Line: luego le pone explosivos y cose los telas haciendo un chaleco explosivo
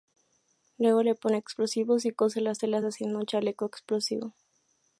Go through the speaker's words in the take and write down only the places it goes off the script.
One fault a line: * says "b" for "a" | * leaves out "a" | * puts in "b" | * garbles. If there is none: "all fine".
* says "las" for "los"